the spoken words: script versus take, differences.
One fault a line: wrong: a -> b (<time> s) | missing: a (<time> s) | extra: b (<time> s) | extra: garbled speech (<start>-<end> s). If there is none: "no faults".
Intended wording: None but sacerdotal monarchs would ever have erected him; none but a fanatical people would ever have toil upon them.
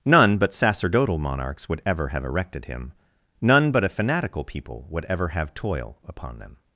no faults